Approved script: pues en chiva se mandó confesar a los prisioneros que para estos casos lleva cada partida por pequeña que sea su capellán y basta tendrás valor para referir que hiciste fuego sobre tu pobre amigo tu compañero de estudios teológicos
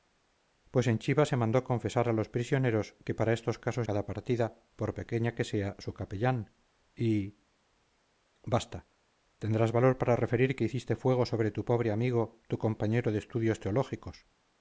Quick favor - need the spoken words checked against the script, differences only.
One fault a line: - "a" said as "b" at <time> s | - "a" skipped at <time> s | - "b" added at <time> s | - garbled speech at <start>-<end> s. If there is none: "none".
- "lleva" skipped at 3.9 s